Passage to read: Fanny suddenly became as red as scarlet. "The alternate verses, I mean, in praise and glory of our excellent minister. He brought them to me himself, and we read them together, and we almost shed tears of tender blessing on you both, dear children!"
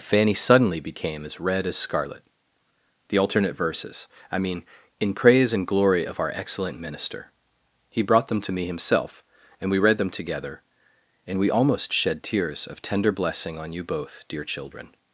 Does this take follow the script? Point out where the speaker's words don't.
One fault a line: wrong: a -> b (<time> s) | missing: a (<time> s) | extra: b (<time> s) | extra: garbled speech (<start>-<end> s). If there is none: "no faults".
no faults